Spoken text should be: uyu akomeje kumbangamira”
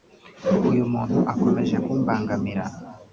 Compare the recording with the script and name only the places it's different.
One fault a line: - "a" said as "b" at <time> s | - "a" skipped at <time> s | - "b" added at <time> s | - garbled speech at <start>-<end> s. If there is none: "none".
- "muntu" added at 0.9 s